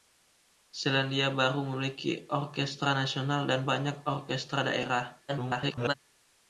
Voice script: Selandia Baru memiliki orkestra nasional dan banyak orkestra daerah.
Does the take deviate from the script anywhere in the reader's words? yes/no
yes